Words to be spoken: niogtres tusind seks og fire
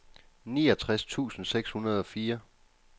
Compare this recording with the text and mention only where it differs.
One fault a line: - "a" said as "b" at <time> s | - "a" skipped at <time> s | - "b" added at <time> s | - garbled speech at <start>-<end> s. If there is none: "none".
- "hundrede" added at 1.7 s